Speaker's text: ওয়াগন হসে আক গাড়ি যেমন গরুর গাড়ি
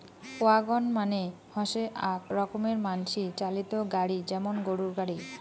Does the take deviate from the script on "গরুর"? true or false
false